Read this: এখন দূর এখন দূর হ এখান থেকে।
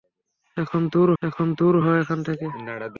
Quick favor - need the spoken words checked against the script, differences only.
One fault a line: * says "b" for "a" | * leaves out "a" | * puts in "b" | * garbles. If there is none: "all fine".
all fine